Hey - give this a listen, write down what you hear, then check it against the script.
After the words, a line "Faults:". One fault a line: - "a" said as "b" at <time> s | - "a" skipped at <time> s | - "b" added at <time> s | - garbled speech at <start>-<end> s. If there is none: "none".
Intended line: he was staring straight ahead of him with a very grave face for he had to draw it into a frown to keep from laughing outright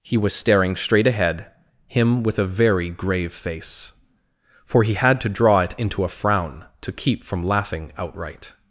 he was staring straight ahead him with a very grave face for he had to draw it into a frown to keep from laughing outright
Faults:
- "of" skipped at 1.5 s